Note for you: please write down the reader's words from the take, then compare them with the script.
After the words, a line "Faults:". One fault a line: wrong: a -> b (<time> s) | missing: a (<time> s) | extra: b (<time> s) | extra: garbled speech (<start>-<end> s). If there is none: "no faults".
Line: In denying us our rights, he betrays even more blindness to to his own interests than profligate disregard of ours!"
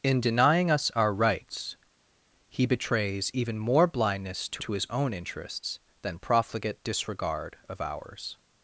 In denying us our rights, he betrays even more blindness to to his own interests than profligate disregard of ours!"
Faults:
no faults